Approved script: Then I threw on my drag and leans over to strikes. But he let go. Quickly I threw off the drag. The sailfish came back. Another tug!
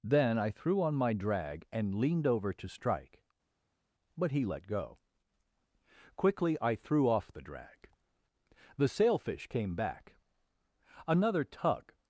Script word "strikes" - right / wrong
wrong